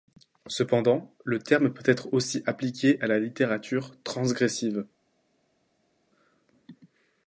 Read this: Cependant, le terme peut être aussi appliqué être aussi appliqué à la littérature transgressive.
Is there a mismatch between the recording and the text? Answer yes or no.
yes